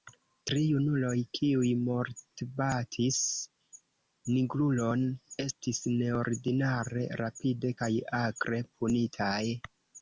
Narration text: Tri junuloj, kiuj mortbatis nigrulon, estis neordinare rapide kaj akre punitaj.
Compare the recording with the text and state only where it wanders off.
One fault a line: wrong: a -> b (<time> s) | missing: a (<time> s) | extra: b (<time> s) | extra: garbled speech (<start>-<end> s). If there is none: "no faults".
no faults